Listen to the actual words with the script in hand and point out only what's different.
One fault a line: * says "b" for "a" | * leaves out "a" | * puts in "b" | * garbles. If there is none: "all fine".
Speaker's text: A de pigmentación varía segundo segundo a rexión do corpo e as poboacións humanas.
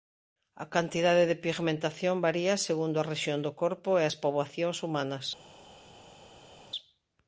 * puts in "cantidade"
* leaves out "segundo"